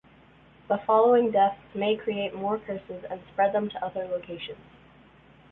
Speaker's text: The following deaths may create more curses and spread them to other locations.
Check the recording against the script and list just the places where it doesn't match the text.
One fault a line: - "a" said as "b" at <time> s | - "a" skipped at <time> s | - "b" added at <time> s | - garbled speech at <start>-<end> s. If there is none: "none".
none